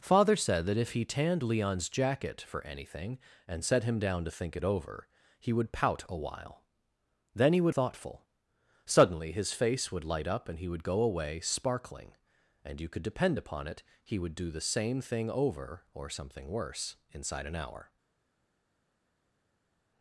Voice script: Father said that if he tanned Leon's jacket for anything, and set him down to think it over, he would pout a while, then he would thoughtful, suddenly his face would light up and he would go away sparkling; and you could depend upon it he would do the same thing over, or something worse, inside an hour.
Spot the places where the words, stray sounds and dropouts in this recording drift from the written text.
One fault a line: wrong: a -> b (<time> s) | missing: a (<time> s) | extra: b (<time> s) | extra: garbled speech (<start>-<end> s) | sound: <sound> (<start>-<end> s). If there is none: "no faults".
no faults